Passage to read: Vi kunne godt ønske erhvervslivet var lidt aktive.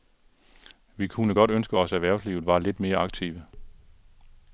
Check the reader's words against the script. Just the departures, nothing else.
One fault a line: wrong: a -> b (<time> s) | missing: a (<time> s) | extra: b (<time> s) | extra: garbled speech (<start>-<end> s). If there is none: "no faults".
extra: os (1.8 s)
extra: mere (2.8 s)